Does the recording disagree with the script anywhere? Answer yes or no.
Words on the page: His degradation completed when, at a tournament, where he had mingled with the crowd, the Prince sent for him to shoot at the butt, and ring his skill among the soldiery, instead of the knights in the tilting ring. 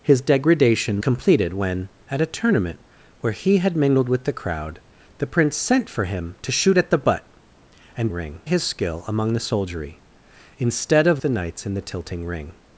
no